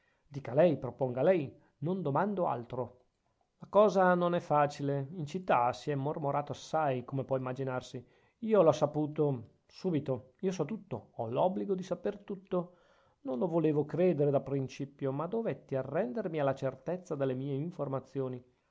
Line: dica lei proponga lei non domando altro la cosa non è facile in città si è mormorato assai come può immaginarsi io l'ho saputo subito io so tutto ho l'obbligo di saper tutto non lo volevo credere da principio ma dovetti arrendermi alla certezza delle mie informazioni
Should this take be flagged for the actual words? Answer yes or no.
no